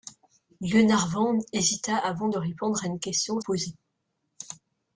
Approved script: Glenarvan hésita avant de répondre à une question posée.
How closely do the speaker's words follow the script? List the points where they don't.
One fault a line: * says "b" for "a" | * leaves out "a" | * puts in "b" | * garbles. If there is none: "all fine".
all fine